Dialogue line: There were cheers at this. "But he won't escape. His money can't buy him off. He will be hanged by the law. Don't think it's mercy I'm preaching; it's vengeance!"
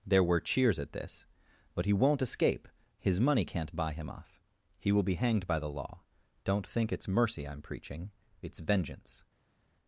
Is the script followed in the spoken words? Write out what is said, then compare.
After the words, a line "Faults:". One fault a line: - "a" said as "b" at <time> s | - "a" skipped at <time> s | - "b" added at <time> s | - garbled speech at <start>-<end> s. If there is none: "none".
There were cheers at this. "But he won't escape. His money can't buy him off. He will be hanged by the law. Don't think it's mercy I'm preaching; it's vengeance!"
Faults:
none